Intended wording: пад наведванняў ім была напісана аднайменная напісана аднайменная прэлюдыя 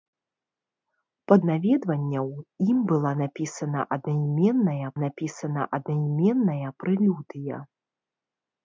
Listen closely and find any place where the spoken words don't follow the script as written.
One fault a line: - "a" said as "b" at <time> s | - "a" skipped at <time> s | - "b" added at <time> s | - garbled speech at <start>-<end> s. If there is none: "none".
none